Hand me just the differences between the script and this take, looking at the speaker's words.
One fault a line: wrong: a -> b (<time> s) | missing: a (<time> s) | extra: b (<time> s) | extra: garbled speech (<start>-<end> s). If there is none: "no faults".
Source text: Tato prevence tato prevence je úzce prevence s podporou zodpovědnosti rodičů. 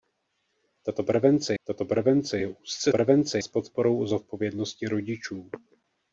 no faults